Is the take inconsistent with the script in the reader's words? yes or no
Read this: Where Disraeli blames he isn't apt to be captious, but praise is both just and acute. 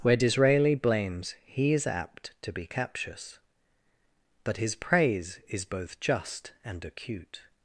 yes